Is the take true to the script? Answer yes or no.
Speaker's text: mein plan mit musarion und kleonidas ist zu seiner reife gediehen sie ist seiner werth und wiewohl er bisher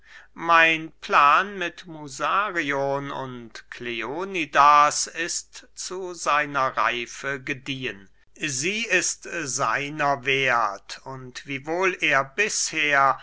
yes